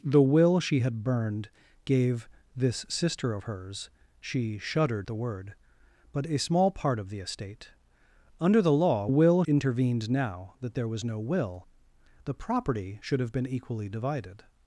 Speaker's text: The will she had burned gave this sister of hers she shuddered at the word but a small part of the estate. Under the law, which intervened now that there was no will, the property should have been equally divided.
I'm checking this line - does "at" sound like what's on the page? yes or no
no